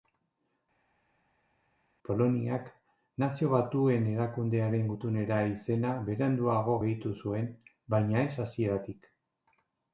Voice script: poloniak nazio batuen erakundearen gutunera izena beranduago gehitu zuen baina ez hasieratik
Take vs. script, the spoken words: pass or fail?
pass